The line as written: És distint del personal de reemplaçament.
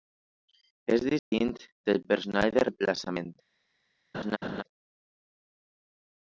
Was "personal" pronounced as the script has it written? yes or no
yes